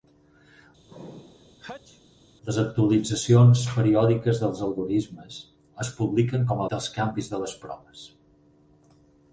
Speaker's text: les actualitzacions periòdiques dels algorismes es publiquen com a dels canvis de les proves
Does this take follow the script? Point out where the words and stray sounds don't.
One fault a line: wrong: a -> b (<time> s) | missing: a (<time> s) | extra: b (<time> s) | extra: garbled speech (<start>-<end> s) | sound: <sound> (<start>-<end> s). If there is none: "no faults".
sound: sneeze (0.9-2.0 s)